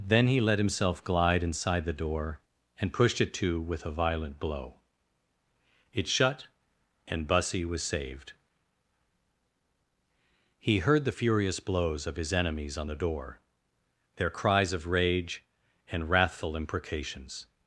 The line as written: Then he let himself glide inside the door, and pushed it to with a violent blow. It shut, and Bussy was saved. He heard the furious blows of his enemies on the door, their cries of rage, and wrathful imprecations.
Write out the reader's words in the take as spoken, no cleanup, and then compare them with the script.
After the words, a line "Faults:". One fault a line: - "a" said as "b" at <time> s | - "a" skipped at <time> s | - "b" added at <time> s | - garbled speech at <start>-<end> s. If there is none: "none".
Then he let himself glide inside the door, and pushed it to with a violent blow. It shut, and Bussy was saved. He heard the furious blows of his enemies on the door, their cries of rage, and wrathful imprecations.
Faults:
none